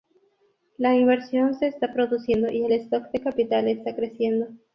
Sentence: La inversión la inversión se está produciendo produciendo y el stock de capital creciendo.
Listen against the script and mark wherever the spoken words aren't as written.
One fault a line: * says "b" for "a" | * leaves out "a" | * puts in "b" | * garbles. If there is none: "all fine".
* leaves out "la inversión"
* leaves out "produciendo"
* puts in "está"